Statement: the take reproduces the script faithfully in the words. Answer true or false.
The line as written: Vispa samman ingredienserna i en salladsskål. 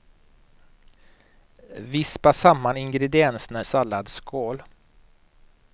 false